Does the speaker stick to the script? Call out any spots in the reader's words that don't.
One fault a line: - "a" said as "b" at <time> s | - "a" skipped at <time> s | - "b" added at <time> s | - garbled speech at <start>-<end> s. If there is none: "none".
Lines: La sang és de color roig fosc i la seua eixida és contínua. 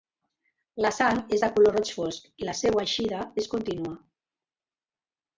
none